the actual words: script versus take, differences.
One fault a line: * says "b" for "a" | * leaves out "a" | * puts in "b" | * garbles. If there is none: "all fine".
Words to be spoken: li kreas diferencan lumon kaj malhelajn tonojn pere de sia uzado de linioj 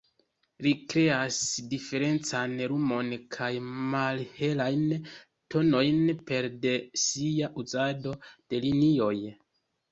all fine